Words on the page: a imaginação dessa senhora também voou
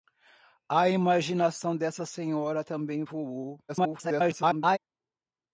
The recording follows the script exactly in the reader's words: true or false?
false